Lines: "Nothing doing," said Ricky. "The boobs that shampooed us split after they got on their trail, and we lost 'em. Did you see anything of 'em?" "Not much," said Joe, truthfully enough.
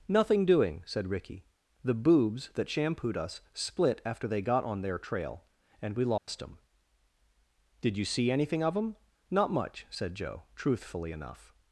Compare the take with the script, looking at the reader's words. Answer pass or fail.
pass